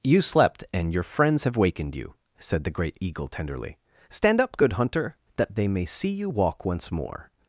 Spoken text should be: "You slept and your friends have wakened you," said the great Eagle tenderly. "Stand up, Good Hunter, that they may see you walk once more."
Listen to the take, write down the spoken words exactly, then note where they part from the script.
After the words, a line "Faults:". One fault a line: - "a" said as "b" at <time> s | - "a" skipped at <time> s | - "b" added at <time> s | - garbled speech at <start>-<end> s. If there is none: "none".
"You slept and your friends have wakened you," said the great Eagle tenderly. "Stand up, Good Hunter, that they may see you walk once more."
Faults:
none